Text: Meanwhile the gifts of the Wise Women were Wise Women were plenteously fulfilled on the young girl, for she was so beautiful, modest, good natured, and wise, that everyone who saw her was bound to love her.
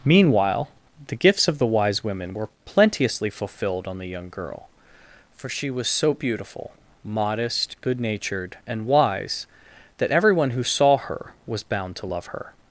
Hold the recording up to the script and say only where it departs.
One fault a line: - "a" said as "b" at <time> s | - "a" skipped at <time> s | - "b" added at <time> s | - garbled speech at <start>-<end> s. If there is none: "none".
- "Wise Women were" skipped at 2.5 s